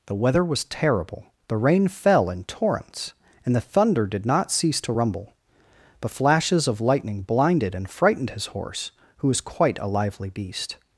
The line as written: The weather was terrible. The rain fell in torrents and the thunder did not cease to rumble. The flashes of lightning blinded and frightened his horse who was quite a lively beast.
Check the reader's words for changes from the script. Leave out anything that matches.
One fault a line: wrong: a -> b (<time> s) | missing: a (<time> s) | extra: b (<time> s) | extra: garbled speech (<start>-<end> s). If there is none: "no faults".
wrong: The -> But (6.0 s)